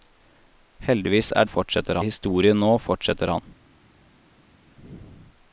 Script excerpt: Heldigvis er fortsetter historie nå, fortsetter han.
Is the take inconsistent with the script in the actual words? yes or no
no